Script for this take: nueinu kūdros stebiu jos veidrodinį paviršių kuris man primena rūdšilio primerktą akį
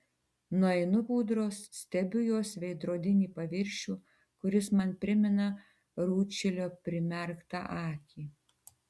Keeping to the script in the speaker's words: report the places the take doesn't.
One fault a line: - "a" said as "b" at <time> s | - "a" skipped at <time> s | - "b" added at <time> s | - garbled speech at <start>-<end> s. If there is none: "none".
none